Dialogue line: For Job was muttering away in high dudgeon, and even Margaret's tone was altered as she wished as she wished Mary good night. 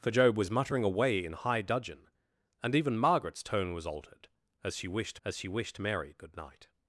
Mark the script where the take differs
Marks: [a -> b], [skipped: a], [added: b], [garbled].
For Job was muttering away in high dudgeon, and even Margaret's tone was altered as she wished as she wished Mary good night.